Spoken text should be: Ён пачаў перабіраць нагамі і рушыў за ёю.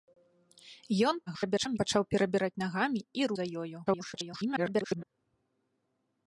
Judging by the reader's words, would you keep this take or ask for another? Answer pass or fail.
fail